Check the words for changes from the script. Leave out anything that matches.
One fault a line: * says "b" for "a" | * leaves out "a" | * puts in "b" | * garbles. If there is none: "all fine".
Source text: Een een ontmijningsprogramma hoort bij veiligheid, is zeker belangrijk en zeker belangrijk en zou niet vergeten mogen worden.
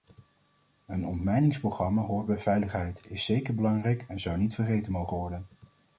* leaves out "een"
* leaves out "zeker belangrijk en"